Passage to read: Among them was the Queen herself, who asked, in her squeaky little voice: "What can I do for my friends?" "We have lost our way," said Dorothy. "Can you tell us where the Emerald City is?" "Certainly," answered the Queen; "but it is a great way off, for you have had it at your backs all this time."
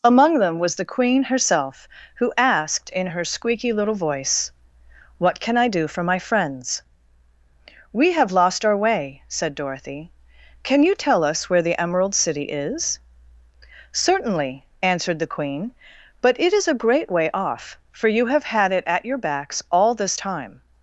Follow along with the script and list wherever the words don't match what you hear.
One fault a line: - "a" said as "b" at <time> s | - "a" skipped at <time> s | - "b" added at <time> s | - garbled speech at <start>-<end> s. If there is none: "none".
none